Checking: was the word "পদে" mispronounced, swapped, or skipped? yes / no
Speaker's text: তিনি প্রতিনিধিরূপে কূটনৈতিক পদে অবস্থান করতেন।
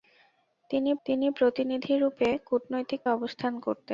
yes